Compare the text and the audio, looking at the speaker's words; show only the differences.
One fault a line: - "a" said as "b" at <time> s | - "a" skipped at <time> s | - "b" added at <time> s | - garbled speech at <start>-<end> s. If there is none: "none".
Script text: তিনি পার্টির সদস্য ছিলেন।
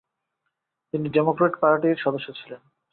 - "ডেমোক্র্যাট" added at 1.1 s